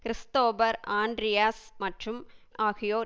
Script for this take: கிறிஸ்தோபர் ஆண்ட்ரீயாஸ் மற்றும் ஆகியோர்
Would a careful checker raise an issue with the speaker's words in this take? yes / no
no